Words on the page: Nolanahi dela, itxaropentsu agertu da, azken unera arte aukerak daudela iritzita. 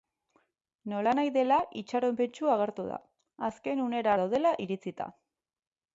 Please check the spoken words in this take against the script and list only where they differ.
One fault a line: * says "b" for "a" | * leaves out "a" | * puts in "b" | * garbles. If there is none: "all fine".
* leaves out "arte aukerak"